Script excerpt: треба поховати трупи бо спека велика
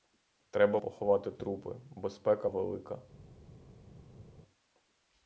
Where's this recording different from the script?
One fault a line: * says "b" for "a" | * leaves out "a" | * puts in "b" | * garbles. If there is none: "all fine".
all fine